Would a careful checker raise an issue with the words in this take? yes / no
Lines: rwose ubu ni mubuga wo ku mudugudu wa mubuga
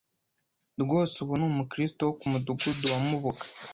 yes